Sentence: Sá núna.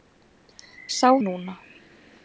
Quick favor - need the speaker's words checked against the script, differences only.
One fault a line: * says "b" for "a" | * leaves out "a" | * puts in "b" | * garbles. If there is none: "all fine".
all fine